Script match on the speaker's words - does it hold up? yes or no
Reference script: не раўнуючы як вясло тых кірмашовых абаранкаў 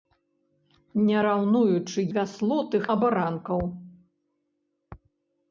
no